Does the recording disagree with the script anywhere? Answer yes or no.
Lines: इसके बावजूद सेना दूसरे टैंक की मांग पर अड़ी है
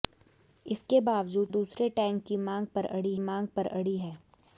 yes